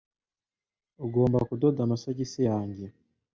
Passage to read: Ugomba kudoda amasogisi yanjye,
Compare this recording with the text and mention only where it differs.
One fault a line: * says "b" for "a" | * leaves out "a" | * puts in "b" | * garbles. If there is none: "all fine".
all fine